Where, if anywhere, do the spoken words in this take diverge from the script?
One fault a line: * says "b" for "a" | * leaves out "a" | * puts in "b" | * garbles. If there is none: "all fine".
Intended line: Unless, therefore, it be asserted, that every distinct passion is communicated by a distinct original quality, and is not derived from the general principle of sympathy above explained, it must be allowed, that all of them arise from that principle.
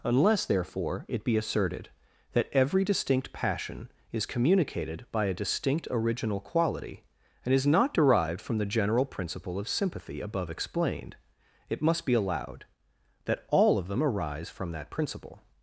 all fine